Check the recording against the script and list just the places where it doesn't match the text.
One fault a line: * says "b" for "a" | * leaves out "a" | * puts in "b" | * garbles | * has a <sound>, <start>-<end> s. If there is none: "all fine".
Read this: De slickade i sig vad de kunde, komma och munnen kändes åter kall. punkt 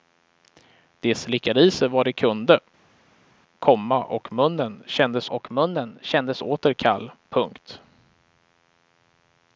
* puts in "och munnen kändes"